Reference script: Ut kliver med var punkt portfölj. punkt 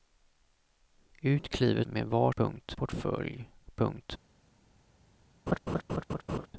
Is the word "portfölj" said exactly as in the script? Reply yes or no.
yes